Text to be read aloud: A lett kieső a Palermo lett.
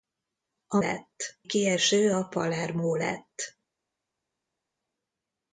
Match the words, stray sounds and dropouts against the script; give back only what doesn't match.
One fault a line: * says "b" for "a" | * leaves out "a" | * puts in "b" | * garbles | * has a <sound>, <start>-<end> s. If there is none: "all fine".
all fine